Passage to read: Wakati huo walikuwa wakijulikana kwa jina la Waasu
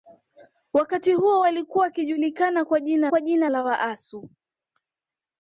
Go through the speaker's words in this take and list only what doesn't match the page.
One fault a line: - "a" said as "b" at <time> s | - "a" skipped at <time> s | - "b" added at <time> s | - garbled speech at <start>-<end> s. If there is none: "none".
- "kwa jina" added at 3.1 s